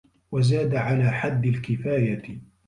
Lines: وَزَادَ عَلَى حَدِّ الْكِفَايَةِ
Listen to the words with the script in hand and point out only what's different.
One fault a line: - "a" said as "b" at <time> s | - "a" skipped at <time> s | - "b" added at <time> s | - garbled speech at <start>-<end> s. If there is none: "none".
none